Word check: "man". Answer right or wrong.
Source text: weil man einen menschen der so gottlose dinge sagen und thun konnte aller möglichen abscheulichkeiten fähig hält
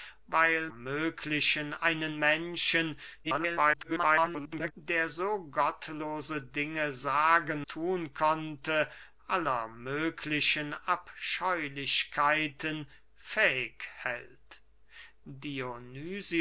wrong